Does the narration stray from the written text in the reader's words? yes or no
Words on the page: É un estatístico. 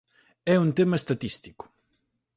yes